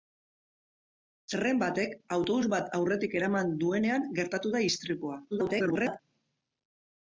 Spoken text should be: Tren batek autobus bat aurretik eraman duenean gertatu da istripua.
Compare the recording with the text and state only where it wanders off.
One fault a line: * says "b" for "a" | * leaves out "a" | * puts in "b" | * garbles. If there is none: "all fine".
* garbles